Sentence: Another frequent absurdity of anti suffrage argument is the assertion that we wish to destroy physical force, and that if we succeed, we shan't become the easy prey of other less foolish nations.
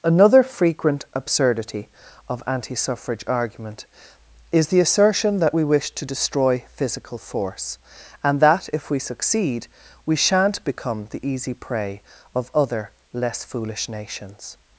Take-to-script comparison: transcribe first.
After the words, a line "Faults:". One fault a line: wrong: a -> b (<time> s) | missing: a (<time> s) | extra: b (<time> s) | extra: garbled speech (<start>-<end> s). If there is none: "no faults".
Another frequent absurdity of anti suffrage argument is the assertion that we wish to destroy physical force, and that if we succeed, we shan't become the easy prey of other less foolish nations.
Faults:
no faults